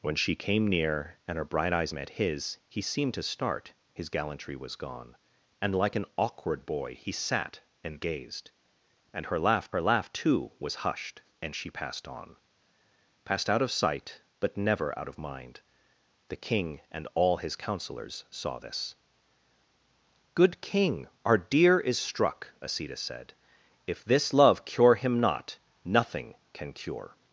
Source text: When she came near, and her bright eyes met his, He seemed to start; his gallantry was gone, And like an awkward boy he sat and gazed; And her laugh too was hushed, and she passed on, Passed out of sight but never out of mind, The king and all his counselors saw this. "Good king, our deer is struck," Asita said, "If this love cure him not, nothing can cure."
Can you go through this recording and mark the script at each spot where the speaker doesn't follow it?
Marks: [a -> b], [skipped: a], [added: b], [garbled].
When she came near, and her bright eyes met his, He seemed to start; his gallantry was gone, And like an awkward boy he sat and gazed; And her laugh [added: her laugh] too was hushed, and she passed on, Passed out of sight but never out of mind, The king and all his counselors saw this. "Good king, our deer is struck," Asita said, "If this love cure him not, nothing can cure."